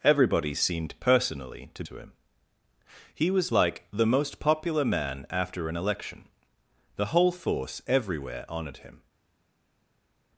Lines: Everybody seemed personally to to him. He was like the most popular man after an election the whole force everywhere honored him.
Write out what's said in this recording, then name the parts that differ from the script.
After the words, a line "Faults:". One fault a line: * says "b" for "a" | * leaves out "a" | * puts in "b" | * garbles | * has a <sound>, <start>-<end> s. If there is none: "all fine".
Everybody seemed personally to to him. He was like the most popular man after an election the whole force everywhere honored him.
Faults:
all fine